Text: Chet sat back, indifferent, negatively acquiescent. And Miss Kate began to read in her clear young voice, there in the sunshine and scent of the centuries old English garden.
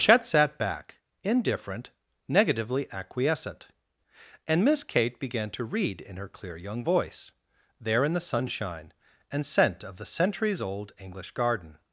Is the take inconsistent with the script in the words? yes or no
no